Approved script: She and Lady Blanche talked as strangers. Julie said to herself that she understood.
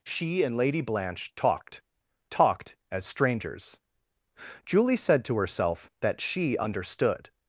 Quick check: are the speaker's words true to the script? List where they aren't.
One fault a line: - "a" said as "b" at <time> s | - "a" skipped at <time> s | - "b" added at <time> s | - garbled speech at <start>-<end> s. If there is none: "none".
- "talked" added at 2.3 s